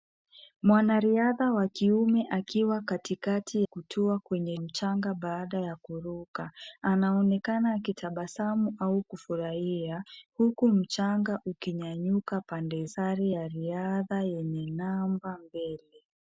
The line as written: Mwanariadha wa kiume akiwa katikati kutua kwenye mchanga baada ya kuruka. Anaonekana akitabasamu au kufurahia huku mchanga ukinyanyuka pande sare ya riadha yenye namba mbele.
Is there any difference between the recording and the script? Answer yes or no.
no